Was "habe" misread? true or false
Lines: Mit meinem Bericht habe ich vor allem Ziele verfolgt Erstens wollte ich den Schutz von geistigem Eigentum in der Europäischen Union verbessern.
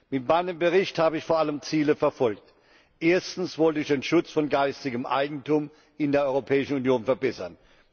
false